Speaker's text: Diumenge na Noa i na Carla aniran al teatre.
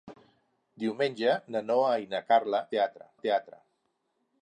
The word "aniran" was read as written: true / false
false